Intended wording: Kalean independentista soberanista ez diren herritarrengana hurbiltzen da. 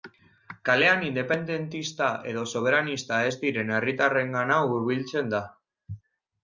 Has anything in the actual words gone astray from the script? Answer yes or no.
yes